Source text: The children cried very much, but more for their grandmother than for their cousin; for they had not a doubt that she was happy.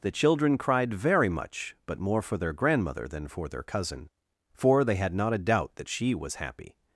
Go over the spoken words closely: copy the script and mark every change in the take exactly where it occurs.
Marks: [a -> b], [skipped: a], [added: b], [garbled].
The children cried very much, but more for their grandmother than for their cousin; for they had not a doubt that she was happy.